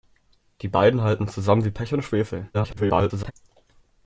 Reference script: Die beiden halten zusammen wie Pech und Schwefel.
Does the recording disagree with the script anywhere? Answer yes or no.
yes